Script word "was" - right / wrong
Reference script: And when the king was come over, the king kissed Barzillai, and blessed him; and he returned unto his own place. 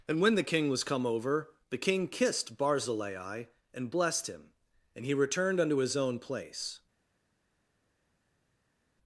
right